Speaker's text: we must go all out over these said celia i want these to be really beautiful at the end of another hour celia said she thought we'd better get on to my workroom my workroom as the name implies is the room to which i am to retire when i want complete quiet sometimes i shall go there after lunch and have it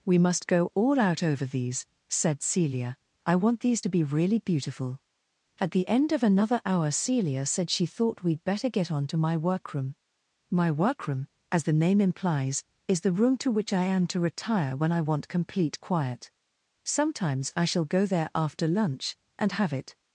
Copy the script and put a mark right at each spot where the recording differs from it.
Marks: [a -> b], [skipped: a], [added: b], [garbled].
we must go all out over these said celia i want these to be really beautiful at the end of another hour celia said she thought we'd better get on to my workroom my workroom as the name implies is the room to which i am to retire when i want complete quiet sometimes i shall go there after lunch and have it